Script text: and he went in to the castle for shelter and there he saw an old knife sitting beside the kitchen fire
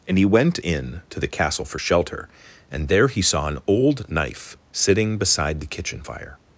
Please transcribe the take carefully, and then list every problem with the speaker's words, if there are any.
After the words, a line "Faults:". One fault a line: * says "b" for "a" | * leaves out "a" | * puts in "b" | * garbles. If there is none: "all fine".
and he went in to the castle for shelter and there he saw an old knife sitting beside the kitchen fire
Faults:
all fine